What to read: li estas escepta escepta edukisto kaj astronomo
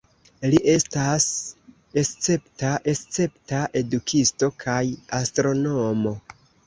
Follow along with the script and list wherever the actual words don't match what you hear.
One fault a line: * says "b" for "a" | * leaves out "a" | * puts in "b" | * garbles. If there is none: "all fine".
all fine